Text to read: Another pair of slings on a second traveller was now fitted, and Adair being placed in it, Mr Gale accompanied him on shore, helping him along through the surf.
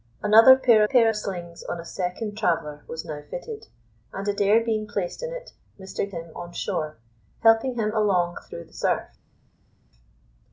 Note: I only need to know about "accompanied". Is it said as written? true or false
false